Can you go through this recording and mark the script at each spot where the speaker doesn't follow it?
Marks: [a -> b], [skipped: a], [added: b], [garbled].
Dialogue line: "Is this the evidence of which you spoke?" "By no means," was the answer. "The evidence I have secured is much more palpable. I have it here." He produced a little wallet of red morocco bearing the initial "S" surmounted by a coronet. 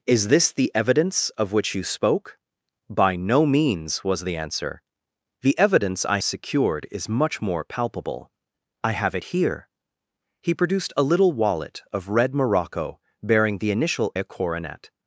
"Is this the evidence of which you spoke?" "By no means," was the answer. "The evidence I [skipped: have] secured is much more palpable. I have it here." He produced a little wallet of red morocco bearing the initial [skipped: "S" surmounted by] a coronet.